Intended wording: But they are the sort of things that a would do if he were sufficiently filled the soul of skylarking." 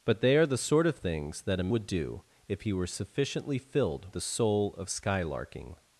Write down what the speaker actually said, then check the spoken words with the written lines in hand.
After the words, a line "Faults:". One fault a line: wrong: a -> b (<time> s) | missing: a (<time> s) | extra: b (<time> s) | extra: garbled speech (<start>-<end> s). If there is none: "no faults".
But they are the sort of things that a would do if he were sufficiently filled the soul of skylarking."
Faults:
no faults